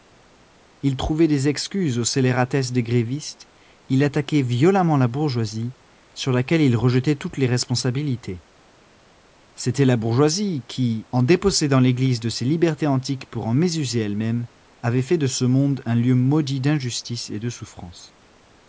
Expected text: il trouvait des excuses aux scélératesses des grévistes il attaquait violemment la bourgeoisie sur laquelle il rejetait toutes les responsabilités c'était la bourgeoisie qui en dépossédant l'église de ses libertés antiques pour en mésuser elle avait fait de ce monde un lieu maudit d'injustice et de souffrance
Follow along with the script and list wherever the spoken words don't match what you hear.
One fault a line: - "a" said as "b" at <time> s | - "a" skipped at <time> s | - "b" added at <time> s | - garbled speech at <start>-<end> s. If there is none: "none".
- "même" added at 14.2 s